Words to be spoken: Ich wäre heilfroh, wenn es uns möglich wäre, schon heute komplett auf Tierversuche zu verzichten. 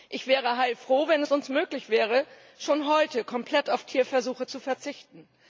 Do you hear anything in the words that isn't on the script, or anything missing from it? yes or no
no